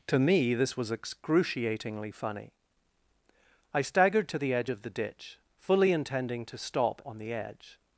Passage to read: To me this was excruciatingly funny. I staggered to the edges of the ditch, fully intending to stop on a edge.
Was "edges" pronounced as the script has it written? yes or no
no